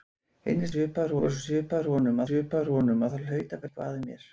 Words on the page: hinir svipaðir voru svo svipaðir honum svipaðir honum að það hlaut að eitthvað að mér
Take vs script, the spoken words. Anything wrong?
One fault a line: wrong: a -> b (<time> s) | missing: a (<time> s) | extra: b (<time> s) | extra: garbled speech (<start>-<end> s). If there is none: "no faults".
no faults